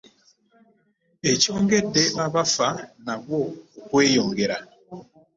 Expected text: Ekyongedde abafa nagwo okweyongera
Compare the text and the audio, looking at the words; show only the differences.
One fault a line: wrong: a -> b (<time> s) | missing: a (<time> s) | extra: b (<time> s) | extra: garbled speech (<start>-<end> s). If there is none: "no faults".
no faults